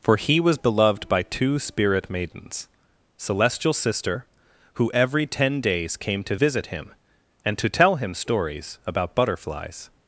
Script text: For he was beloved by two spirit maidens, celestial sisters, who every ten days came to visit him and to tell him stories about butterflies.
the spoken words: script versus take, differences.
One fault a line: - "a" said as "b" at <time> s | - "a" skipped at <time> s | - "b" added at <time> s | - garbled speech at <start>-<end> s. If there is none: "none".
- "sisters" said as "sister" at 3.7 s